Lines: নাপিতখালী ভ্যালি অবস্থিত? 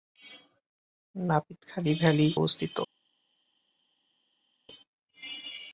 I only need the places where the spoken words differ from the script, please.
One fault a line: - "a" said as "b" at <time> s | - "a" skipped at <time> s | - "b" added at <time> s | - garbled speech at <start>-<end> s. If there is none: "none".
none